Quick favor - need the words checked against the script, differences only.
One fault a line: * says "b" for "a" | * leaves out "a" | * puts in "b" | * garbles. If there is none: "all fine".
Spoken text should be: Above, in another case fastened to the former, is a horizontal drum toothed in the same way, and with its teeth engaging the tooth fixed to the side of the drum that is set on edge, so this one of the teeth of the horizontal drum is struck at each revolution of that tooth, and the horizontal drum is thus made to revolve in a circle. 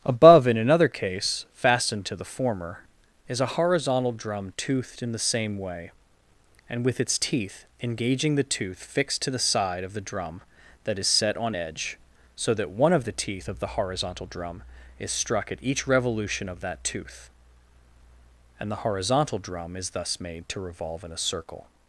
* says "that" for "this"